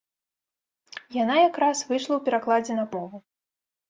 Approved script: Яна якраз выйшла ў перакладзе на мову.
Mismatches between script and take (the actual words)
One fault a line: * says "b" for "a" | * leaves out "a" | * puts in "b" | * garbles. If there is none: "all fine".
all fine